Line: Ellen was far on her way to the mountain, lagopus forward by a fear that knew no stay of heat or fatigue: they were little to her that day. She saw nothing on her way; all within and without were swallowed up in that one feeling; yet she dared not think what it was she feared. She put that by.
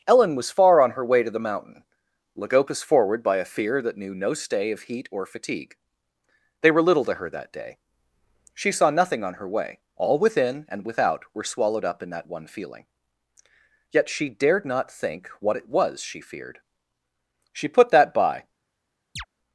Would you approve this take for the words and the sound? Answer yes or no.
no